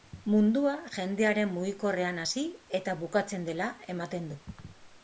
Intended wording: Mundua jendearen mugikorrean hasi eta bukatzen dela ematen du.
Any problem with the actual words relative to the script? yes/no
no